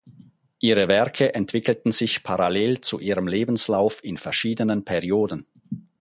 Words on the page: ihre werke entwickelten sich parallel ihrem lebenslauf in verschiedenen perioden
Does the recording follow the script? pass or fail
fail